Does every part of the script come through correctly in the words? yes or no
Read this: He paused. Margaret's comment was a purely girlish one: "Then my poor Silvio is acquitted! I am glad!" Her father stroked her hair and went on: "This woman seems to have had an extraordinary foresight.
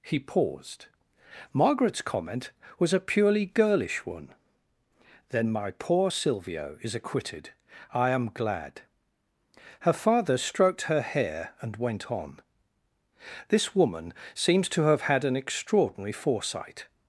yes